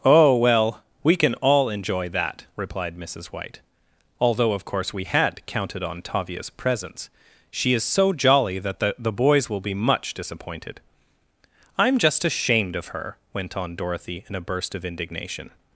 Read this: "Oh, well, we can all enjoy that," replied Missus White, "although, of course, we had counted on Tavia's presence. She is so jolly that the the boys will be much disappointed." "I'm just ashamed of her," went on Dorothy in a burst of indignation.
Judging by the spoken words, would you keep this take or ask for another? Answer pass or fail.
pass